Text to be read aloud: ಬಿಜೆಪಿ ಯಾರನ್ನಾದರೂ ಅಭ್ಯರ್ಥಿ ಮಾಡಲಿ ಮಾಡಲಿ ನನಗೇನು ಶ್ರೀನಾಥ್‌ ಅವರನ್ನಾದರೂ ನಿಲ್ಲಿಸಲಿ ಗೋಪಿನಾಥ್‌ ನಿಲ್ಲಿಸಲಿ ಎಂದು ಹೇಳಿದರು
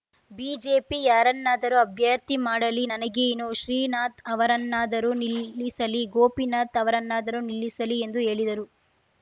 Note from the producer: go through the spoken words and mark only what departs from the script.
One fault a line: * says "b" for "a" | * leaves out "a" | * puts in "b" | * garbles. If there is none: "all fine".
* leaves out "ಮಾಡಲಿ"
* puts in "ಅವರನ್ನಾದರೂ"